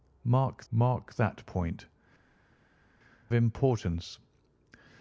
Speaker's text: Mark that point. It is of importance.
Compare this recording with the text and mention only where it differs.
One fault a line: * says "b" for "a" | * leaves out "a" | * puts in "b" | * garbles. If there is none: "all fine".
* puts in "mark"
* leaves out "It is of"